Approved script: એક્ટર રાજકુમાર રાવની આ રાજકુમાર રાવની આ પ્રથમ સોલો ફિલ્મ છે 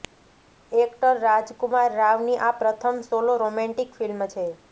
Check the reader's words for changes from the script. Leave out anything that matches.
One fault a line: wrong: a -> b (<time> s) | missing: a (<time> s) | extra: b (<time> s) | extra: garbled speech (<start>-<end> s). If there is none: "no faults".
missing: રાજકુમાર રાવની આ (2.6 s)
extra: રોમેન્ટિક (3.4 s)